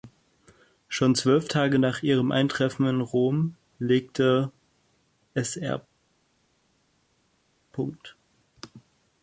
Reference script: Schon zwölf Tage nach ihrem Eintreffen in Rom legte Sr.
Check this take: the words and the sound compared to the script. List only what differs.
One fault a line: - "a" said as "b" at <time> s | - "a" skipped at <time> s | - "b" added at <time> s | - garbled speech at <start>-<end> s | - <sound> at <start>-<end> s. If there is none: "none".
none